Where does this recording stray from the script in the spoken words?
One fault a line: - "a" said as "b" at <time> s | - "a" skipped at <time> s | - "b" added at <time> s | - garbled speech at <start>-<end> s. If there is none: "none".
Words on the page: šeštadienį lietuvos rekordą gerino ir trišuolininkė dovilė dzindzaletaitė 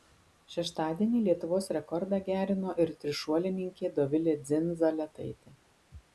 none